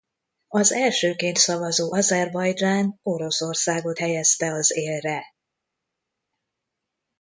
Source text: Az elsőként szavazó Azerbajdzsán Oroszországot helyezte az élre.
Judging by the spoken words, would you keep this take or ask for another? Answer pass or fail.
pass